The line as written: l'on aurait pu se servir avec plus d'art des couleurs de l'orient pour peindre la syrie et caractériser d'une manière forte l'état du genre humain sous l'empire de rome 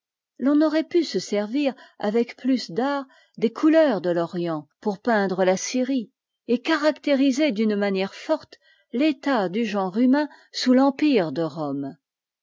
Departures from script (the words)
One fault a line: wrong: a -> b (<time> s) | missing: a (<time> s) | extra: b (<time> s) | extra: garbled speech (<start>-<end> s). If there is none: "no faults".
no faults